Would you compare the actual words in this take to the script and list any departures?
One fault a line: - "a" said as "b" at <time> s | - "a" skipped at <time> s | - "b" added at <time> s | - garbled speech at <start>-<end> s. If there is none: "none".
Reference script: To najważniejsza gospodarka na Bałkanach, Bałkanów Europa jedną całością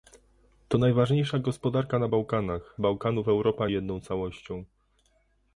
none